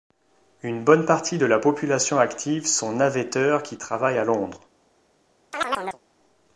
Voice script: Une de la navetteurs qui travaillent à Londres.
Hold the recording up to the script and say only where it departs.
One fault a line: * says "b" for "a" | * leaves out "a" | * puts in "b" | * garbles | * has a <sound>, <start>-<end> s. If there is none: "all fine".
* puts in "bonne partie"
* puts in "population active sont"
* has a chirp, 5.5-6.0 s